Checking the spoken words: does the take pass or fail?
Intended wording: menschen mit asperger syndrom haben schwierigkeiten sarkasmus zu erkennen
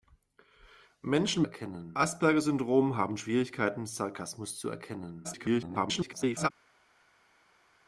fail